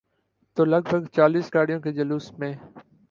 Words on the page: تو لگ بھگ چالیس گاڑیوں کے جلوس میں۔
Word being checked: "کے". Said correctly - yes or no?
yes